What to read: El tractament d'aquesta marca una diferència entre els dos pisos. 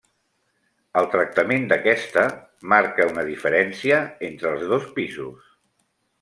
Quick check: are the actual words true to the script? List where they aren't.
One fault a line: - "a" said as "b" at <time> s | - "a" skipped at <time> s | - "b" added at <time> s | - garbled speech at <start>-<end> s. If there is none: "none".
none